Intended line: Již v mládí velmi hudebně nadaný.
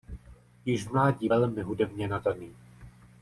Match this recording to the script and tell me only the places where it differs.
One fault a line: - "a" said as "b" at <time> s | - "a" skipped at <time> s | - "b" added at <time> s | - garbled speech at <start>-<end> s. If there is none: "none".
none